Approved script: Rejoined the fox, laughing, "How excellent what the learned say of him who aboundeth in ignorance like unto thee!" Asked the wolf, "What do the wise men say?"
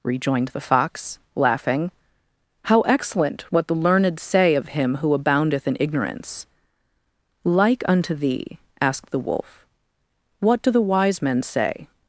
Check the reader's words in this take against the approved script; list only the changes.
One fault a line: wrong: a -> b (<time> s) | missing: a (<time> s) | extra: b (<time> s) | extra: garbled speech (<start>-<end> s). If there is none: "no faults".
no faults